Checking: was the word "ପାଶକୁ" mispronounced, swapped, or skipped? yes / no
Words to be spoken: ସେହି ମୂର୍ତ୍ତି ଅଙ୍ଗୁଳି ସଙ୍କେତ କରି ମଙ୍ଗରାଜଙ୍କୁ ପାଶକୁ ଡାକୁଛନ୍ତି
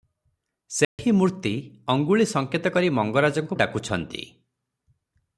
yes